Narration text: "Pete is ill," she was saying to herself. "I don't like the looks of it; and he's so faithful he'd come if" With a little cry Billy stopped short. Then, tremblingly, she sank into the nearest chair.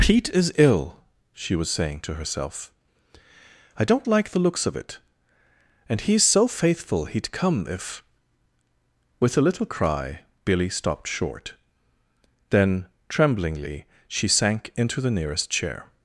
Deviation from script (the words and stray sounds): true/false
false